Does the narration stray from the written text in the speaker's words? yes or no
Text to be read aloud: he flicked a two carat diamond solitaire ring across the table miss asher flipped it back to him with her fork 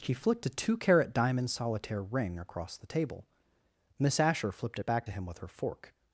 no